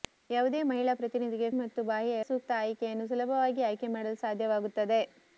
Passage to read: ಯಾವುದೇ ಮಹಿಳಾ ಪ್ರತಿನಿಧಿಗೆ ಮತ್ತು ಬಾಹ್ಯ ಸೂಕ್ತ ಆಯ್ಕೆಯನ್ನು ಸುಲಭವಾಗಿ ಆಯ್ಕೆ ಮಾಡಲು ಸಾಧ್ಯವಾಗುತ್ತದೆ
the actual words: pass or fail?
pass